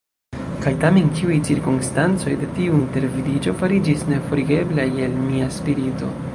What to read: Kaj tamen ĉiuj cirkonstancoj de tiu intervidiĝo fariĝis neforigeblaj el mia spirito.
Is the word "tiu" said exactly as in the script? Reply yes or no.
yes